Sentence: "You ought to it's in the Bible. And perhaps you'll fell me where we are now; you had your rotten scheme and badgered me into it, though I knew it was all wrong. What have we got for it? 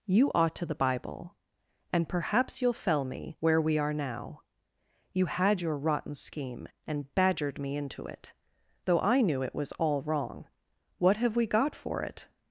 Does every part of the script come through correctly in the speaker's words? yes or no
no